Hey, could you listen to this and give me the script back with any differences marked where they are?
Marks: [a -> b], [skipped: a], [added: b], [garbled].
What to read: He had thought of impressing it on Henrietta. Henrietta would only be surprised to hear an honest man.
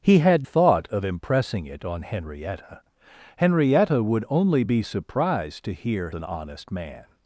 He had thought of impressing it on Henrietta. Henrietta would only be surprised to hear an honest man.